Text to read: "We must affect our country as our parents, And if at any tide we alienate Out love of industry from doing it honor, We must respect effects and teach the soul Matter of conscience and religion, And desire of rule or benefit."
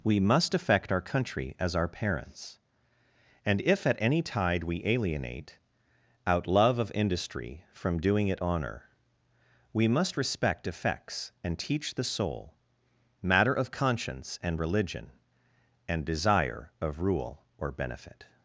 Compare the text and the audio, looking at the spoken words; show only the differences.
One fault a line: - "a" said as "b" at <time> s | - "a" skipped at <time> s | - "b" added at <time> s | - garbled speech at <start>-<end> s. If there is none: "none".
none